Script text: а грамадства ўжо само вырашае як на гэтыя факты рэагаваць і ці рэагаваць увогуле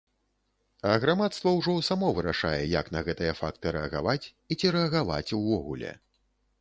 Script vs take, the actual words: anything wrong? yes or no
no